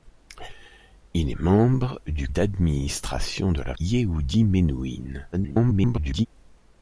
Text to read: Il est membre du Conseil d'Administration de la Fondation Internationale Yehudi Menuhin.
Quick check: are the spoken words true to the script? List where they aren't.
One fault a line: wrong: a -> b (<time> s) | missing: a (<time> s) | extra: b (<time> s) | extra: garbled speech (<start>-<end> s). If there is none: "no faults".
missing: Conseil (2.3 s)
missing: Fondation Internationale (3.7 s)
extra: garbled speech (5.3-6.3 s)